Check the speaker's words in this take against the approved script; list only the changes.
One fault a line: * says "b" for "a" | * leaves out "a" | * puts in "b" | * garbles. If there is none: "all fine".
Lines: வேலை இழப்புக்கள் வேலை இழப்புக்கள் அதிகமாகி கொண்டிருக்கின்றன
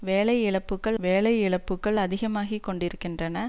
all fine